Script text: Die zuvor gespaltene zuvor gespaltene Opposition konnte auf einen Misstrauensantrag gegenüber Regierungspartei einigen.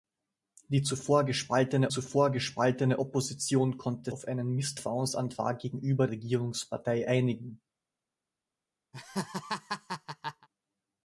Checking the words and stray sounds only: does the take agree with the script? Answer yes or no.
no